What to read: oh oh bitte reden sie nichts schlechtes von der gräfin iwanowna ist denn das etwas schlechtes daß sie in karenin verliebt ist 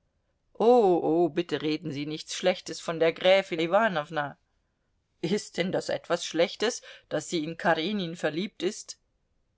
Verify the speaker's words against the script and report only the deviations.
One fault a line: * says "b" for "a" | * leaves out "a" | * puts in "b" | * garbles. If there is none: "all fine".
all fine